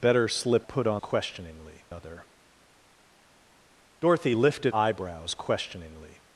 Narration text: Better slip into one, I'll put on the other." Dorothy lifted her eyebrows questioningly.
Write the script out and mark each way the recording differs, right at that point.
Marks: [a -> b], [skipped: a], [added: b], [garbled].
Better slip [skipped: into one, I'll] put on [the -> questioningly] other." Dorothy lifted [skipped: her] eyebrows questioningly.